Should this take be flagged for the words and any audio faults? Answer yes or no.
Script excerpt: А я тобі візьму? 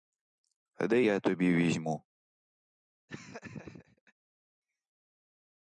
yes